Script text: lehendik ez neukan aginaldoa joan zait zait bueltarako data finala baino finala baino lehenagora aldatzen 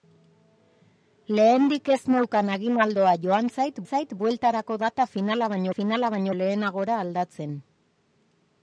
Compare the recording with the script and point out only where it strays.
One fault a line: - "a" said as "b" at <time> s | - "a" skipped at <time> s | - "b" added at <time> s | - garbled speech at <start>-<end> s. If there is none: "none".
none